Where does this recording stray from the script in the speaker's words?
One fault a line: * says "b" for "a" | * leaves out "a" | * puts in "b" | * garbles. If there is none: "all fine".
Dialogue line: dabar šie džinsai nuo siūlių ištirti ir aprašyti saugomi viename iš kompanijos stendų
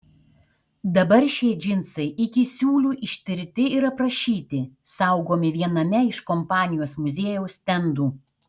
* says "iki" for "nuo"
* puts in "muziejaus"